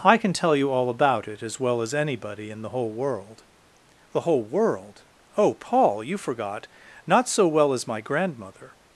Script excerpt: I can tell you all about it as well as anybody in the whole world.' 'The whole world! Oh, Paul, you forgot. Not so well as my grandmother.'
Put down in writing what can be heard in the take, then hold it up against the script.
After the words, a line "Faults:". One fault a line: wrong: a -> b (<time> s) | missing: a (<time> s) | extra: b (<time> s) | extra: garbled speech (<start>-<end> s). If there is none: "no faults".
I can tell you all about it as well as anybody in the whole world.' 'The whole world! Oh, Paul, you forgot. Not so well as my grandmother.'
Faults:
no faults